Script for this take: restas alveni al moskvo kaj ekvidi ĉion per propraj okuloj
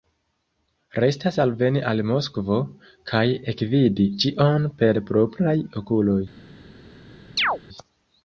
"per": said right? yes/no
yes